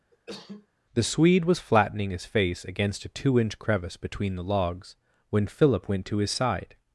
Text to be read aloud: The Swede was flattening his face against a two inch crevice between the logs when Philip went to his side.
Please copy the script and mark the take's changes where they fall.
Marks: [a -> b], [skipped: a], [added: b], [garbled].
The Swede was flattening his face against a two inch crevice between the logs when Philip went to his side.